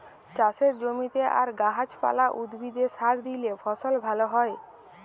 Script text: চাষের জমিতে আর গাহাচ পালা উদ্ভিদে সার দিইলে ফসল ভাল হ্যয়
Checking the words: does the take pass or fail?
pass